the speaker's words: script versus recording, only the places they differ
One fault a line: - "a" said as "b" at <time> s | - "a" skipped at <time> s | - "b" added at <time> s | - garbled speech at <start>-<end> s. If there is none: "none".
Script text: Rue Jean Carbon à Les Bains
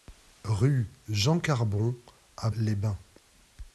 none